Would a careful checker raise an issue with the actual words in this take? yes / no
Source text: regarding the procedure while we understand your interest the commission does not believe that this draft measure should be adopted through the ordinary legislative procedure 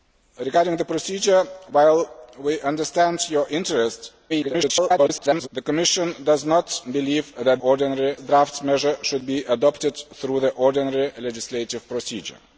yes